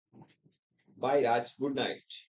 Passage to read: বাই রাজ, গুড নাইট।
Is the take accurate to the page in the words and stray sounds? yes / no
yes